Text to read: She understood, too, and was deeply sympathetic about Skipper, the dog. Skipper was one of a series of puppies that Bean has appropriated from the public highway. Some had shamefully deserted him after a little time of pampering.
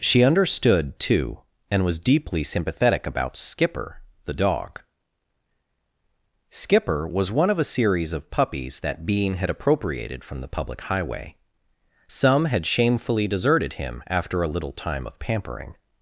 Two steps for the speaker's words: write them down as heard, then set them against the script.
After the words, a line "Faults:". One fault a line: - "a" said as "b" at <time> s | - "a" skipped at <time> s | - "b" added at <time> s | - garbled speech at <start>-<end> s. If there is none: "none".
She understood, too, and was deeply sympathetic about Skipper, the dog. Skipper was one of a series of puppies that Bean had appropriated from the public highway. Some had shamefully deserted him after a little time of pampering.
Faults:
- "has" said as "had" at 9.3 s